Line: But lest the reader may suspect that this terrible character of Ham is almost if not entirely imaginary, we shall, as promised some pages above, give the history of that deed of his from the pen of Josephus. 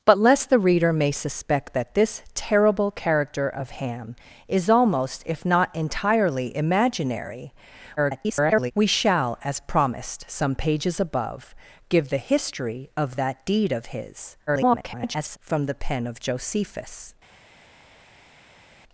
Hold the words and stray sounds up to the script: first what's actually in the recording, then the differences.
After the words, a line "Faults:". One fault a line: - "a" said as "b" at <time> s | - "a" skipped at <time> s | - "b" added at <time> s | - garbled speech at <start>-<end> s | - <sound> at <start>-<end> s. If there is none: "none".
But lest the reader may suspect that this terrible character of Ham is almost if not entirely imaginary, [garbled] we shall, as promised some pages above, give the history of that deed of his [garbled] from the pen of Josephus.
Faults:
- garbled speech at 8.0-8.7 s
- garbled speech at 14.5-15.4 s